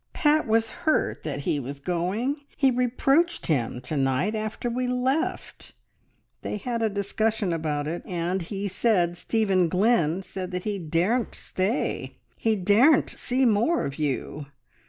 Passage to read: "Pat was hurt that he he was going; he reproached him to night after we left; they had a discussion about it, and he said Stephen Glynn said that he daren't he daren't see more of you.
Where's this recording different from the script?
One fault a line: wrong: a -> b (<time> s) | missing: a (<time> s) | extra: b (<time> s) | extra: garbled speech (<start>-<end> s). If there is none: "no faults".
missing: he (1.6 s)
extra: stay (11.3 s)